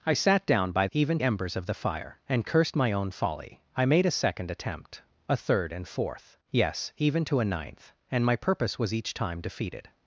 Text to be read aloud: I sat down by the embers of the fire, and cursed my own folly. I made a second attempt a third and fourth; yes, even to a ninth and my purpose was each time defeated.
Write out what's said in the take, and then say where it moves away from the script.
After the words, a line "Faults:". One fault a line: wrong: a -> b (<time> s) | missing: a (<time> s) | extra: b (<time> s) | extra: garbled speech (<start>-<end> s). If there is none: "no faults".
I sat down by even embers of the fire, and cursed my own folly. I made a second attempt a third and fourth; yes, even to a ninth and my purpose was each time defeated.
Faults:
wrong: the -> even (0.9 s)